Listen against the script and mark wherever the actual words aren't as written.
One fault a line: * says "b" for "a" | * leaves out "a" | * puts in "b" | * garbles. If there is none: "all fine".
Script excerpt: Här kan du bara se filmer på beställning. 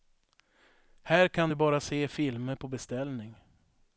all fine